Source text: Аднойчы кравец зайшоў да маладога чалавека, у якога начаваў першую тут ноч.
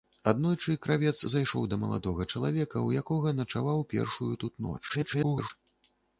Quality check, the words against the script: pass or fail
fail